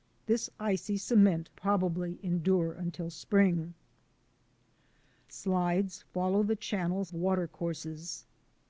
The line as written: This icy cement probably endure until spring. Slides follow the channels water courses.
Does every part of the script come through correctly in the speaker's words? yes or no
yes